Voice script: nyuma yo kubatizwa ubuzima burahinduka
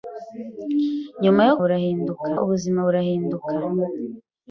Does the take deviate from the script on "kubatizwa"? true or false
true